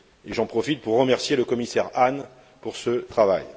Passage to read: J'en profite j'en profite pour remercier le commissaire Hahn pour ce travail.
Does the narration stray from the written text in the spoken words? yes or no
yes